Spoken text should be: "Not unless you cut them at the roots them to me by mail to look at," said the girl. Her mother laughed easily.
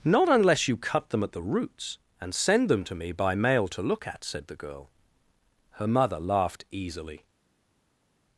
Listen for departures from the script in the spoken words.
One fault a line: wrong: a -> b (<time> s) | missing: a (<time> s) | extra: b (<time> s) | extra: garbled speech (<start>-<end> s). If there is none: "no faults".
extra: and send (2.2 s)